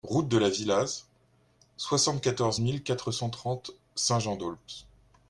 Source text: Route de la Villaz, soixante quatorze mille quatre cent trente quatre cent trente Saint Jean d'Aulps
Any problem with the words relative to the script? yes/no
yes